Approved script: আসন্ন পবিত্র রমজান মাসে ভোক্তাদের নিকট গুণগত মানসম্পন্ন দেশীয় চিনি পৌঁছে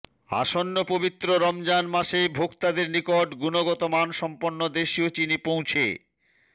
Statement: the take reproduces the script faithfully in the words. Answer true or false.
true